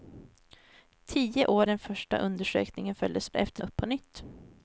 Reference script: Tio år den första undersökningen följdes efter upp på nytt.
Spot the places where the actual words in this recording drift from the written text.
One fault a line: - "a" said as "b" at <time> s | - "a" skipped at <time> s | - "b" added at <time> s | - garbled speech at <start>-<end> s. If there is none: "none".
none